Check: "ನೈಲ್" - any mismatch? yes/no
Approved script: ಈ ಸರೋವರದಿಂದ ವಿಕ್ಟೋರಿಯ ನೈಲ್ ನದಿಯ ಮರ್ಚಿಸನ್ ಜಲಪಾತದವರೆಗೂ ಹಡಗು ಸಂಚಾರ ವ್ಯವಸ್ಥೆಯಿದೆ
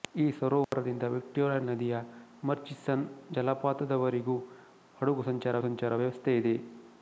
yes